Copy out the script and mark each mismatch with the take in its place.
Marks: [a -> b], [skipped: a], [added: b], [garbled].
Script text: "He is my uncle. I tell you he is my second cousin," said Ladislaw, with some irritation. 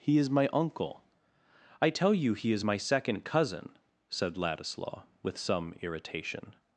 "He is my uncle. I tell you he is my second cousin," said Ladislaw, with some irritation.